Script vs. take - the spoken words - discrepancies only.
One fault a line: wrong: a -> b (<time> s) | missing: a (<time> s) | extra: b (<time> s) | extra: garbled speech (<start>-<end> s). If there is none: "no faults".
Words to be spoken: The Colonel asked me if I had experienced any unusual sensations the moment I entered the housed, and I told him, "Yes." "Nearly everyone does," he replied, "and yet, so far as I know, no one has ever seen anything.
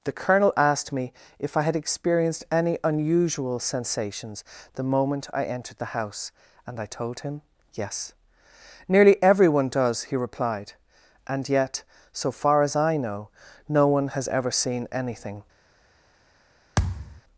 wrong: housed -> house (5.9 s)